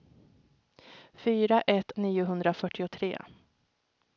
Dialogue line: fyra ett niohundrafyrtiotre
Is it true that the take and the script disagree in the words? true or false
false